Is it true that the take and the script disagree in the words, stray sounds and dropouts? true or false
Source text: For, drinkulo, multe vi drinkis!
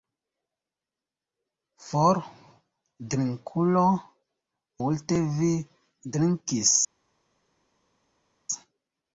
false